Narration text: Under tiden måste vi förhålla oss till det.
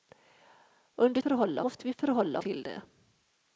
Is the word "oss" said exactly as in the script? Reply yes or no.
no